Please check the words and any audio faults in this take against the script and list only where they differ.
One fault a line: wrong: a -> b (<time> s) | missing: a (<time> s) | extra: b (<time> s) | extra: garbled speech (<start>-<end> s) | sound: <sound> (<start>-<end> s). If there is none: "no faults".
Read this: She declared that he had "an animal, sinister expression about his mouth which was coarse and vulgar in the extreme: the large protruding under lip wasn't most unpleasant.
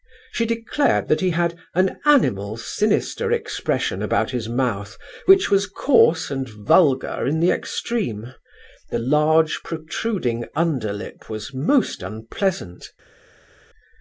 wrong: wasn't -> was (11.3 s)